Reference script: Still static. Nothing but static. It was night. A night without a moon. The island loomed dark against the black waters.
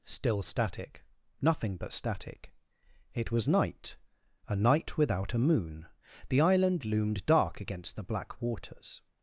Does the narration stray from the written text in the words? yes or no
no